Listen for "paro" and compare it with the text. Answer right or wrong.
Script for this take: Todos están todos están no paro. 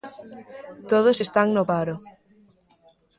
right